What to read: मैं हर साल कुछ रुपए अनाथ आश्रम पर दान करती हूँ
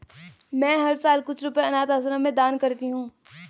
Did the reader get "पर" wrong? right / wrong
wrong